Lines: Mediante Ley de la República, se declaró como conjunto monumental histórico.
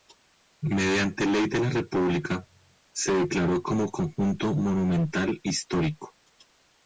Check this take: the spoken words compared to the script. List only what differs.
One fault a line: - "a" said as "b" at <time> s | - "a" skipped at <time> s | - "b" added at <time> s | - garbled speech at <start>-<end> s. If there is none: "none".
none